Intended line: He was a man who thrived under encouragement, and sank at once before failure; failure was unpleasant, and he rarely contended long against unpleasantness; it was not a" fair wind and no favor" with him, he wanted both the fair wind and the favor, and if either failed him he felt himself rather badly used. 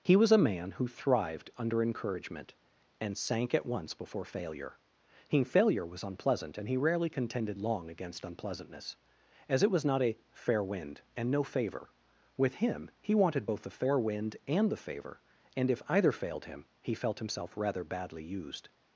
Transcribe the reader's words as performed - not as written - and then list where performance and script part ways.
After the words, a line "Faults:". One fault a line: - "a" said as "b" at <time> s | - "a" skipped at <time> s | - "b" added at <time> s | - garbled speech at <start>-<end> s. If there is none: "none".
He was a man who thrived under encouragement, and sank at once before failure; he failure was unpleasant, and he rarely contended long against unpleasantness; as it was not a" fair wind and no favor" with him, he wanted both the fair wind and the favor, and if either failed him he felt himself rather badly used.
Faults:
- "he" added at 5.3 s
- "as" added at 9.5 s